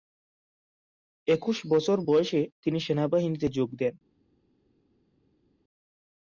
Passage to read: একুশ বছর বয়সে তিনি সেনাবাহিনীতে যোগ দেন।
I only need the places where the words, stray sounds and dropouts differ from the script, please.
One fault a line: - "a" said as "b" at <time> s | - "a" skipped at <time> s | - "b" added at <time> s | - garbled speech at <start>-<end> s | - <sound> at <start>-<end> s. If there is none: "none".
none